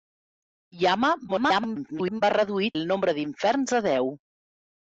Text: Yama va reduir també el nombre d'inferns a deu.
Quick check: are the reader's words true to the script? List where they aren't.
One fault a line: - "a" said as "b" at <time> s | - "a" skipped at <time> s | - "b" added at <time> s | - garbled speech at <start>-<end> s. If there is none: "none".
- garbled speech at 1.3-2.2 s
- "també" skipped at 2.7 s